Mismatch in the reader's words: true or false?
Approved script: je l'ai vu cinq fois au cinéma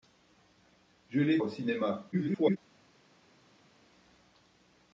true